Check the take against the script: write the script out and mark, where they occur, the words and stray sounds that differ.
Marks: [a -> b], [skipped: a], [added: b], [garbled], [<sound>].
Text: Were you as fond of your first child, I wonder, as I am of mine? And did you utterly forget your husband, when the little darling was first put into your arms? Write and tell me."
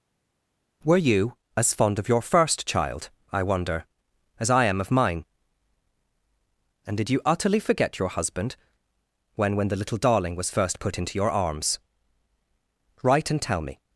Were you as fond of your first child, I wonder, as I am of mine? And did you utterly forget your husband, when [added: when] the little darling was first put into your arms? Write and tell me."